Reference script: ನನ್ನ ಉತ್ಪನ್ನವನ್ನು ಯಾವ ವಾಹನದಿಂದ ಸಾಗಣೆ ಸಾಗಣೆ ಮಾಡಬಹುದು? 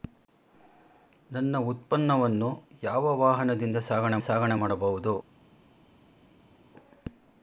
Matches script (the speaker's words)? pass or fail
pass